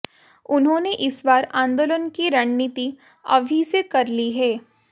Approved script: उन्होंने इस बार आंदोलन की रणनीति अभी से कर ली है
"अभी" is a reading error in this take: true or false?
false